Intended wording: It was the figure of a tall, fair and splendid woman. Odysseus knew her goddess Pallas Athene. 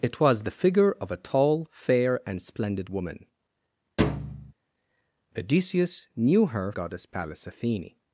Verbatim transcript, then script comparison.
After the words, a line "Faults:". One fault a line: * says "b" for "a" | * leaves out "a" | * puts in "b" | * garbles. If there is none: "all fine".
It was the figure of a tall, fair and splendid woman. Odysseus knew her goddess Pallas Athene.
Faults:
all fine